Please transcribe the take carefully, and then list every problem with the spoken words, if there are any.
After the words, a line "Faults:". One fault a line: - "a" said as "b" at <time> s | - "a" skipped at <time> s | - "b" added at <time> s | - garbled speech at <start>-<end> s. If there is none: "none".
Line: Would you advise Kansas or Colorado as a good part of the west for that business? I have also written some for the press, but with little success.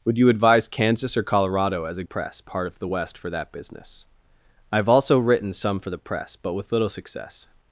Would you advise Kansas or Colorado as a press part of the west for that business? I have also written some for the press, but with little success.
Faults:
- "good" said as "press" at 2.0 s